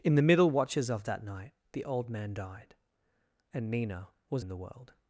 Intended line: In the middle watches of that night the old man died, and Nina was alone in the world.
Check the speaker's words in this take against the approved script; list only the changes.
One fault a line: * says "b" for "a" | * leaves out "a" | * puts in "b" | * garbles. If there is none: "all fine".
* leaves out "alone"